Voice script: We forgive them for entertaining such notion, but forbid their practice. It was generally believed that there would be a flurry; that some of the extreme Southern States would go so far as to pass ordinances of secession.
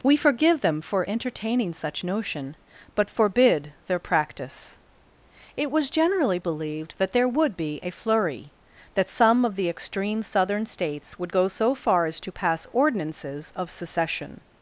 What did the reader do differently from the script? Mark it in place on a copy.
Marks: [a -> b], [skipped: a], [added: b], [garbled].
We forgive them for entertaining such notion, but forbid their practice. It was generally believed that there would be a flurry; that some of the extreme Southern States would go so far as to pass ordinances of secession.